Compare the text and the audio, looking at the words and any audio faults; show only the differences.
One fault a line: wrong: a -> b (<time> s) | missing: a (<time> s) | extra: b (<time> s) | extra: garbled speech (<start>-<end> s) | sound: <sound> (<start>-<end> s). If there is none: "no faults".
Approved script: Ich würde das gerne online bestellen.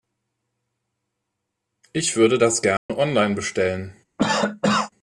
sound: dropout (2.8-2.9 s)
sound: cough (4.2-4.9 s)